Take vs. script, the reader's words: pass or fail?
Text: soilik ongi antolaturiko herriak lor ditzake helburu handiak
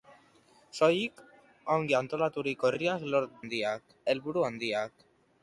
fail